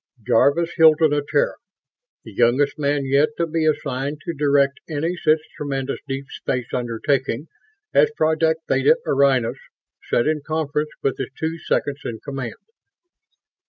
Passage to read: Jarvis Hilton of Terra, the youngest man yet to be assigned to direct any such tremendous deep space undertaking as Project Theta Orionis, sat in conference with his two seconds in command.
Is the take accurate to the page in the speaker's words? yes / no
yes